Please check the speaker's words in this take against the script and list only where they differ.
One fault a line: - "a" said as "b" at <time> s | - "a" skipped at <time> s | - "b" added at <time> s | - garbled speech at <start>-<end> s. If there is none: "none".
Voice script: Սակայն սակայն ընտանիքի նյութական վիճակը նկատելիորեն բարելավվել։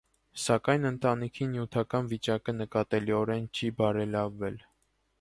- "սակայն" skipped at 0.9 s
- "չի" added at 3.6 s